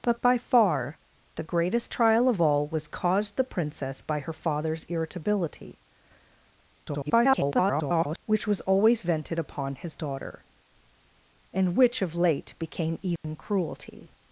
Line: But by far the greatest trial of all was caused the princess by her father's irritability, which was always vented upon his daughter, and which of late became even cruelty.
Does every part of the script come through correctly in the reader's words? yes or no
no